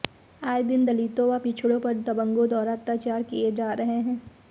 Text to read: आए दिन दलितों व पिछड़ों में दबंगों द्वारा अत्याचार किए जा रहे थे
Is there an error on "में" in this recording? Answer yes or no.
yes